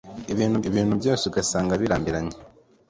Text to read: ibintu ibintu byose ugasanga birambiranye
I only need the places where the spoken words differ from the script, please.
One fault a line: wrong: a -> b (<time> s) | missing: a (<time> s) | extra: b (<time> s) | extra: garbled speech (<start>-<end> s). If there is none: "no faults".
no faults